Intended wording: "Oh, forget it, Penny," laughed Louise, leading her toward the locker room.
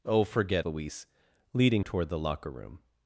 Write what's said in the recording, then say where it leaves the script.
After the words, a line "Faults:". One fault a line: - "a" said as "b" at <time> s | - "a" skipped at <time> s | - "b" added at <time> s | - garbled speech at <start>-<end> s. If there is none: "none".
"Oh, forget Louise, leading toward the locker room.
Faults:
- "it Penny laughed" skipped at 0.7 s
- "her" skipped at 1.8 s